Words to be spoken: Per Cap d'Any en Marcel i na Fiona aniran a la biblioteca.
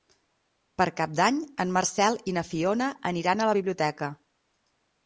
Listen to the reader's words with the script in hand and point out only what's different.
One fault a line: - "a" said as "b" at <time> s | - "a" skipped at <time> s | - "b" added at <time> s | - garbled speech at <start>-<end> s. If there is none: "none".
none